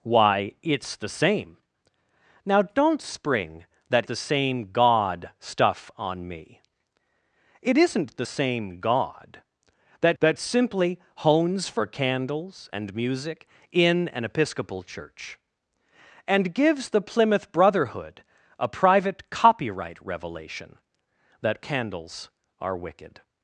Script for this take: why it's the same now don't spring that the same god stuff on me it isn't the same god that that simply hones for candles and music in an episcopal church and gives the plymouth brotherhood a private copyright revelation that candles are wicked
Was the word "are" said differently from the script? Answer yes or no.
no